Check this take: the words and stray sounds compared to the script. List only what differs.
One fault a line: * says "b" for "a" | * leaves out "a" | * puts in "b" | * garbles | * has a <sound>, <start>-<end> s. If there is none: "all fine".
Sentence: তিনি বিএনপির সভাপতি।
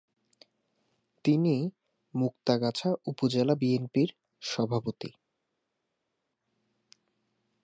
* puts in "মুক্তাগাছা উপজেলা"